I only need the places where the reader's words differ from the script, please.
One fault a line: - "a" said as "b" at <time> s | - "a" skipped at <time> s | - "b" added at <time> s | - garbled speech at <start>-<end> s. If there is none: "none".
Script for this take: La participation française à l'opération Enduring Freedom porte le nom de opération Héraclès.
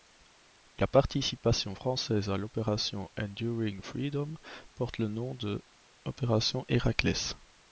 none